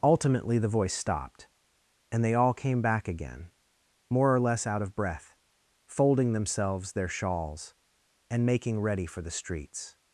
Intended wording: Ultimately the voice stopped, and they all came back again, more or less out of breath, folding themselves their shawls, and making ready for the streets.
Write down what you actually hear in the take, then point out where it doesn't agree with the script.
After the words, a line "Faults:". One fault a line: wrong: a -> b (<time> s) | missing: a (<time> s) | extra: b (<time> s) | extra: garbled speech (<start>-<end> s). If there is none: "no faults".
Ultimately the voice stopped, and they all came back again, more or less out of breath, folding themselves their shawls, and making ready for the streets.
Faults:
no faults